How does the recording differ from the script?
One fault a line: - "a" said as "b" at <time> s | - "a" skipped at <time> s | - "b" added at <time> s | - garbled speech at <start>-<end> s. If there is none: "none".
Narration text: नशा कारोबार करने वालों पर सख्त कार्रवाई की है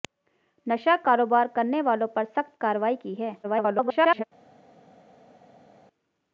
- garbled speech at 3.4-4.2 s